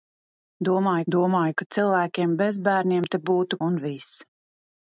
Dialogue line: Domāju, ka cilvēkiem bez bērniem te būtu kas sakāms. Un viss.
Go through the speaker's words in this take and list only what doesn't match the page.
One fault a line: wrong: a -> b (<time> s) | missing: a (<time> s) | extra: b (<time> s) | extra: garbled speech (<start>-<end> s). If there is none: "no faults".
extra: domāju (1.2 s)
missing: kas sakāms (3.6 s)